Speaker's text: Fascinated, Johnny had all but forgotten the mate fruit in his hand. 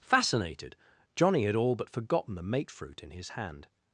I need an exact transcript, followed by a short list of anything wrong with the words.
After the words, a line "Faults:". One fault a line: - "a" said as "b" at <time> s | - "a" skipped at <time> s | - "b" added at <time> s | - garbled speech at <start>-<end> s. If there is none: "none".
Fascinated, Johnny had all but forgotten the mate fruit in his hand.
Faults:
none